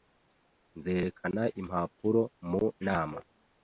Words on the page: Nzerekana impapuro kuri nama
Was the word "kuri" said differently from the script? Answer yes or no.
yes